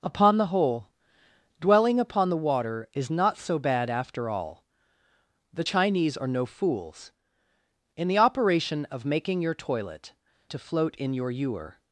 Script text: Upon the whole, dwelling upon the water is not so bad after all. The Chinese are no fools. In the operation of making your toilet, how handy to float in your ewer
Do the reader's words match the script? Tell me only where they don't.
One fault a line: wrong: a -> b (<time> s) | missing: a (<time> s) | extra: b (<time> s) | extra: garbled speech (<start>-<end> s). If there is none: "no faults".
missing: how handy (10.1 s)